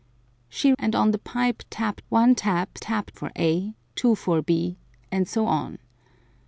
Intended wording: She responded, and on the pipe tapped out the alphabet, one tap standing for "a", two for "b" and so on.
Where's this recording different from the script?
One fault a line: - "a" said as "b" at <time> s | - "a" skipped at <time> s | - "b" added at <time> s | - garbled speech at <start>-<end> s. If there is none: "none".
- "responded" skipped at 0.7 s
- "out the alphabet" skipped at 2.1 s
- "standing" said as "tapped" at 2.8 s